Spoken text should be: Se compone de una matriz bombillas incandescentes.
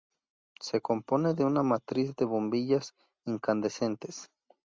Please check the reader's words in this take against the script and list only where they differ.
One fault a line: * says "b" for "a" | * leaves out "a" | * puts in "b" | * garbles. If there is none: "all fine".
* puts in "de"